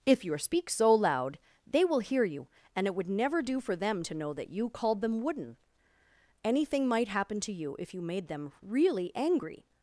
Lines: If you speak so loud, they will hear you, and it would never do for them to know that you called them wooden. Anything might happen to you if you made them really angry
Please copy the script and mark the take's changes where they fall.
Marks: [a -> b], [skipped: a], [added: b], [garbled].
If you speak so loud, they will hear you, and it would never do for them to know that you called them wooden. Anything might happen to you if you made them really angry